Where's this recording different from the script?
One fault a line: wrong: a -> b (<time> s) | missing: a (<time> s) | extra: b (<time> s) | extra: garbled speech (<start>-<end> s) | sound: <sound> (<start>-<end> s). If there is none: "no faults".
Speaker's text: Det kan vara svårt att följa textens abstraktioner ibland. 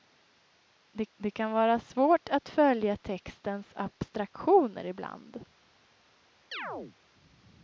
extra: det (1.2 s)
sound: chirp (6.5-7.0 s)